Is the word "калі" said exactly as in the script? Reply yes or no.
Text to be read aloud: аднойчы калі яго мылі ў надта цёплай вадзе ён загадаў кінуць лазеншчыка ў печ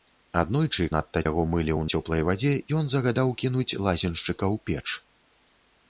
no